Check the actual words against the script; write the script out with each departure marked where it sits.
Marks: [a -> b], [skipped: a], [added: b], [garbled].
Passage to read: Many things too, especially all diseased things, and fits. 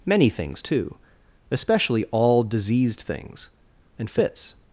Many things too, especially all diseased things, and fits.